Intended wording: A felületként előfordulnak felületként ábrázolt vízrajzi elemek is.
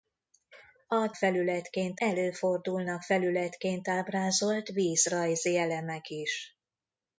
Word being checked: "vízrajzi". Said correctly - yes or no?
yes